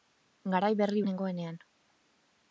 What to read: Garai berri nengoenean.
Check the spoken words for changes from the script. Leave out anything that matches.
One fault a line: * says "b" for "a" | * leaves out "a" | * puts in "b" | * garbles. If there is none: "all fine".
all fine